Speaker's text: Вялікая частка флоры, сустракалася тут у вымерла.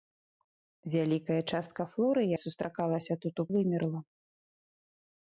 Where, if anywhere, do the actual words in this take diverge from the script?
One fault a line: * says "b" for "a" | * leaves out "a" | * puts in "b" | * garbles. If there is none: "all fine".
all fine